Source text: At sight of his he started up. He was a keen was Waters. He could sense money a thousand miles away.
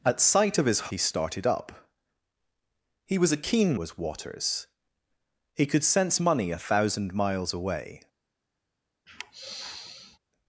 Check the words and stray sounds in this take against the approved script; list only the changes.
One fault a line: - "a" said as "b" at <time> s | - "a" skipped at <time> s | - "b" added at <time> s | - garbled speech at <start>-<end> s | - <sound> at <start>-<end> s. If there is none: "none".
- sigh at 9.1-10.2 s